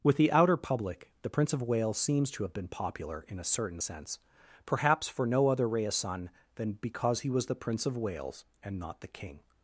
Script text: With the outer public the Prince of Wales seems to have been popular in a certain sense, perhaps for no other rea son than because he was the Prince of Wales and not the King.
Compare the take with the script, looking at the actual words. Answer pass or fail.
pass